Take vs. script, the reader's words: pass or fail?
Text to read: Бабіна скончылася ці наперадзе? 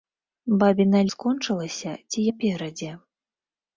pass